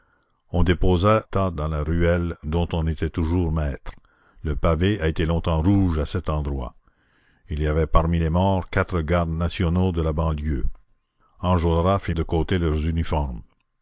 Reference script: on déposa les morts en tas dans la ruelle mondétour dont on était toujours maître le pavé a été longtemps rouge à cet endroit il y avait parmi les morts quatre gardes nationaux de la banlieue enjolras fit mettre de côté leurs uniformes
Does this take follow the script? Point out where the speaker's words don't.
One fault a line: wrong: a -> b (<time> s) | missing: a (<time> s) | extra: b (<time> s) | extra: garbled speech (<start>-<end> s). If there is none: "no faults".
missing: les morts en (1.2 s)
missing: mondétour (2.4 s)
missing: mettre (12.1 s)